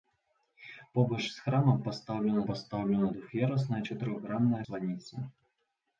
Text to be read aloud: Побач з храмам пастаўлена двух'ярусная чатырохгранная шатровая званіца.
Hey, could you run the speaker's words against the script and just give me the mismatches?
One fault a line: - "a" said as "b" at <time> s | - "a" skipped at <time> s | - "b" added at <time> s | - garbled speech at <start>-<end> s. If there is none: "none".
- "пастаўлена" added at 2.5 s
- "шатровая" skipped at 4.6 s